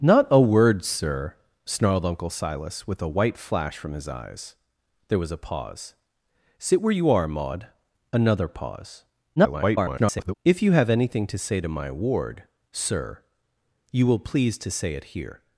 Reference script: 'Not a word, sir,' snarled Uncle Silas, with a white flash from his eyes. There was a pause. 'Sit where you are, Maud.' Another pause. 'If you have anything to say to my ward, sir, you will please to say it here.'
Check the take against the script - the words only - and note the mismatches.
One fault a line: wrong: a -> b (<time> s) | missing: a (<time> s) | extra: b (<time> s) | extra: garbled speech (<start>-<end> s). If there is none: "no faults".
extra: garbled speech (9.4-10.3 s)